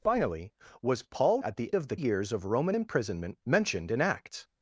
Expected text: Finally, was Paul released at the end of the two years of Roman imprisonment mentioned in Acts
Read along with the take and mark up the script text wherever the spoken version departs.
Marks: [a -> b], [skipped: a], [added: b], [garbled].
Finally, was Paul [skipped: released] at the [skipped: end] of the [skipped: two] years of Roman imprisonment mentioned in Acts